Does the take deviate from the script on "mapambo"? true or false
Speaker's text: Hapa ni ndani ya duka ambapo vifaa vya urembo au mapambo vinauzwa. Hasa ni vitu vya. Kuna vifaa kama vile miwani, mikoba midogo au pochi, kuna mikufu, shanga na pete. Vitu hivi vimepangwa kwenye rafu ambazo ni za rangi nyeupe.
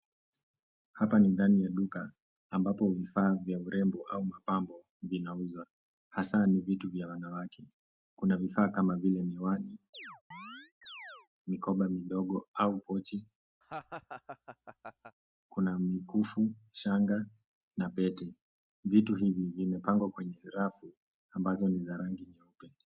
false